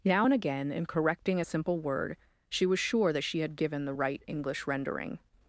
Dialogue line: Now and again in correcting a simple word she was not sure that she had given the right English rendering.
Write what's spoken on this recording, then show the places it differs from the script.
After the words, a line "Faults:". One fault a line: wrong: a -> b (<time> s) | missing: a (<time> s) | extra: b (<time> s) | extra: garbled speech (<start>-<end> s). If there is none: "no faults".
Now and again in correcting a simple word she was sure that she had given the right English rendering.
Faults:
missing: not (2.8 s)